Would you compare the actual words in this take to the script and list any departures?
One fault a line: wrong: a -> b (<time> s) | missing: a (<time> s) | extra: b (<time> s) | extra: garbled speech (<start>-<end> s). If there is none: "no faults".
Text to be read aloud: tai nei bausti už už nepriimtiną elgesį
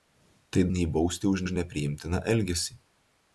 no faults